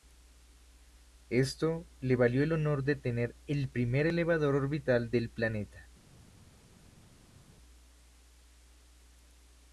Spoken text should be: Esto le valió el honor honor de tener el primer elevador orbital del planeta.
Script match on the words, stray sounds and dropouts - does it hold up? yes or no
no